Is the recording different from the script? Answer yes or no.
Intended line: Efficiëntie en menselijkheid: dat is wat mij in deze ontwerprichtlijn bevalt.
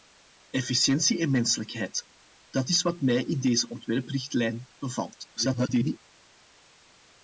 yes